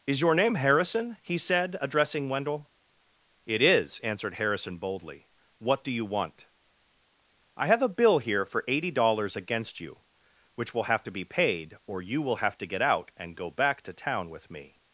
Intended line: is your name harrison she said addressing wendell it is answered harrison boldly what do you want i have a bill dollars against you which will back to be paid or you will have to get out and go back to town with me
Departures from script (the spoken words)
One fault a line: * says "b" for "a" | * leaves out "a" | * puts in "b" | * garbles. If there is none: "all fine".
* says "he" for "she"
* puts in "here for eighty"
* says "have" for "back"